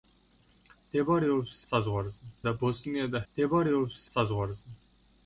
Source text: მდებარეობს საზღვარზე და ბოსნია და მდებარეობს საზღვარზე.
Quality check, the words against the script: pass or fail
pass